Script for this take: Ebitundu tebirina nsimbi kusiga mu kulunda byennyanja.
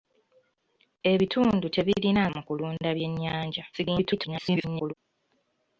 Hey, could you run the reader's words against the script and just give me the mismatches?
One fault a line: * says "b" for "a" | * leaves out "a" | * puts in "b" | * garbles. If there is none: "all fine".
* leaves out "nsimbi kusiga"
* garbles